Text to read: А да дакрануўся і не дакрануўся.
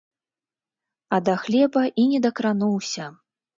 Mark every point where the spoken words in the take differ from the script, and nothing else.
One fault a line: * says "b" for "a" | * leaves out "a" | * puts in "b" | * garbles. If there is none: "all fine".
* says "хлеба" for "дакрануўся"